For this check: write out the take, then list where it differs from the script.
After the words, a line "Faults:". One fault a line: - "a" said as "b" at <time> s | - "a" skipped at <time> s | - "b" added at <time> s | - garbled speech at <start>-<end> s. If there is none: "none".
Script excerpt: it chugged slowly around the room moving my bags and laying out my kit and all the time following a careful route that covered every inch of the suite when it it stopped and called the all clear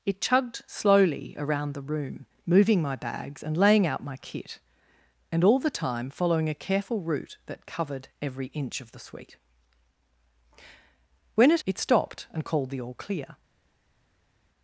it chugged slowly around the room moving my bags and laying out my kit and all the time following a careful route that covered every inch of the suite when it it stopped and called the all clear
Faults:
none